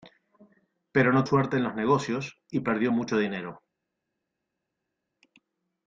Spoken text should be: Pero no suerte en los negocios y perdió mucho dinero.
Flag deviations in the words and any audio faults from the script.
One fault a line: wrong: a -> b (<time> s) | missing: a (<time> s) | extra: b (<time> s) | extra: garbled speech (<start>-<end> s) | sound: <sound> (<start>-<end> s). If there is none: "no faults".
no faults